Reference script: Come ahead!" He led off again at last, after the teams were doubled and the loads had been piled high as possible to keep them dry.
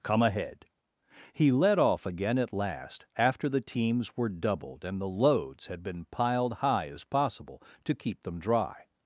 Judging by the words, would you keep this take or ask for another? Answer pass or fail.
pass